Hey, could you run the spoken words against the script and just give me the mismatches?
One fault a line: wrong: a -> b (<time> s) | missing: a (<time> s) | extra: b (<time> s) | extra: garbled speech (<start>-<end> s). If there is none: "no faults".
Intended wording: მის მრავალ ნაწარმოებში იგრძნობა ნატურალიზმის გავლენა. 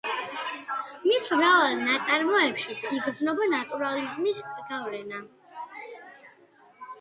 no faults